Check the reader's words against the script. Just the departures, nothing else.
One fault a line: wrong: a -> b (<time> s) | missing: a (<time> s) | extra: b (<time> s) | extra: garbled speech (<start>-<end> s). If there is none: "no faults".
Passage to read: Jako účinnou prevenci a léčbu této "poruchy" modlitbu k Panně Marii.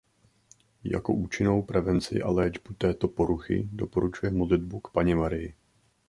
extra: doporučuje (3.7 s)